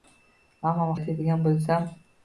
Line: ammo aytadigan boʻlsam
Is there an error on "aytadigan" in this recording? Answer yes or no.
no